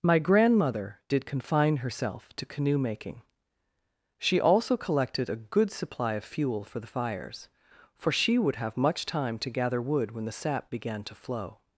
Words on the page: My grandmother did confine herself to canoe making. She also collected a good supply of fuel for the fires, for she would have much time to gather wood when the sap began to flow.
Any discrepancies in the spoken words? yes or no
no